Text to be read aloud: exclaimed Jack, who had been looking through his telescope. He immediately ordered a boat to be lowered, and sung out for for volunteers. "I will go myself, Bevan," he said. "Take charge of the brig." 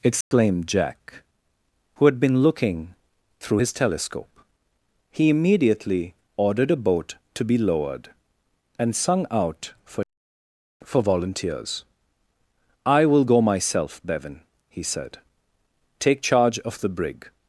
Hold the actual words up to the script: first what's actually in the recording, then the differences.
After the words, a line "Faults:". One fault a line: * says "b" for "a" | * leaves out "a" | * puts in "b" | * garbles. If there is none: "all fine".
exclaimed Jack, who had been looking through his telescope. He immediately ordered a boat to be lowered, and sung out for for volunteers. "I will go myself, Bevan," he said. "Take charge of the brig."
Faults:
all fine